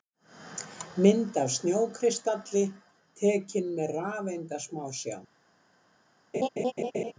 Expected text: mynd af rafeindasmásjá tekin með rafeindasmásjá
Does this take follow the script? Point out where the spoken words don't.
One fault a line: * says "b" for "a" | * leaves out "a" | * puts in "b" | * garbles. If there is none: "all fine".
* says "snjókristalli" for "rafeindasmásjá"